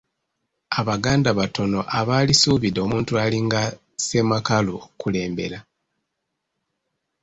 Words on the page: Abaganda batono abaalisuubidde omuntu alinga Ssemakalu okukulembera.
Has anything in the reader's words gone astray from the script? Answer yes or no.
no